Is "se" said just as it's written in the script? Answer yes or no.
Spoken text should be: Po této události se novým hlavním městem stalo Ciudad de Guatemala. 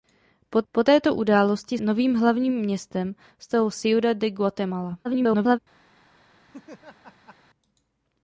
no